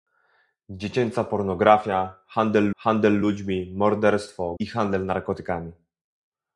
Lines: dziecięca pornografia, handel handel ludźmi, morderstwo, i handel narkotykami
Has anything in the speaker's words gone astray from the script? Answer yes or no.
no